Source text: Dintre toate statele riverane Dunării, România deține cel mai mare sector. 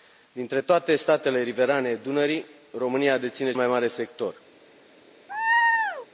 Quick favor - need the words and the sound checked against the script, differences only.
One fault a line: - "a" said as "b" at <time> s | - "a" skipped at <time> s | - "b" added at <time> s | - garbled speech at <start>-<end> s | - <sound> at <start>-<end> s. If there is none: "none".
- "cel" skipped at 3.5 s
- laugh at 5.3-6.1 s